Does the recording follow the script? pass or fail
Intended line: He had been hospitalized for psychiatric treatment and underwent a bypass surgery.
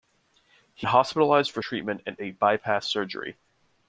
fail